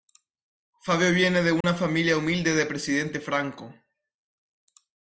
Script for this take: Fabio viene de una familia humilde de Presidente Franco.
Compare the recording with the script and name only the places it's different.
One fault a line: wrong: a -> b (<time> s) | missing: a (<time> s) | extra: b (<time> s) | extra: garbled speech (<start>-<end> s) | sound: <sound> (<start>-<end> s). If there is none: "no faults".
sound: dropout (1.6-1.6 s)